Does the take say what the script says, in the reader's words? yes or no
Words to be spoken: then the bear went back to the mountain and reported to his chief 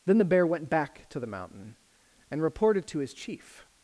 yes